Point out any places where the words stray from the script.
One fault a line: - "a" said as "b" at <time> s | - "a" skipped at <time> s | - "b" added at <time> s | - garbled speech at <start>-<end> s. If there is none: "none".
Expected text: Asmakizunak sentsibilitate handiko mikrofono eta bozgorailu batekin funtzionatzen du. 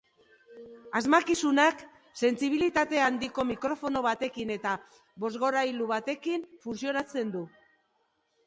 - "batekin" added at 4.1 s